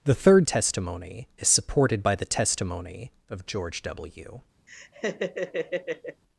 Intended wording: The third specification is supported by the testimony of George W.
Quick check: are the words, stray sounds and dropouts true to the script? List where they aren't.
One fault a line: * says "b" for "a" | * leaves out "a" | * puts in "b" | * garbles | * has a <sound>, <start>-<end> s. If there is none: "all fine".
* says "testimony" for "specification"
* has a laugh, 4.7-6.2 s